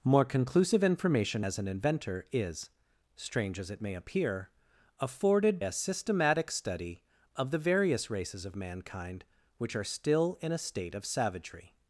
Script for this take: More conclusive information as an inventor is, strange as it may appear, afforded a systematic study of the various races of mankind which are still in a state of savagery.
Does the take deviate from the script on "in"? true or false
false